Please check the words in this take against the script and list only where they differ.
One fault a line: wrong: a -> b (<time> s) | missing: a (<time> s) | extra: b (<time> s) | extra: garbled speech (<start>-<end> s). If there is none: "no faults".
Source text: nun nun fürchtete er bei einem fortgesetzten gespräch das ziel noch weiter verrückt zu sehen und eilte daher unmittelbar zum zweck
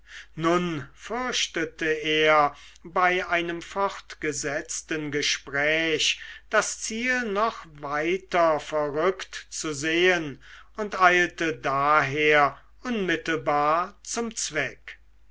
missing: nun (0.9 s)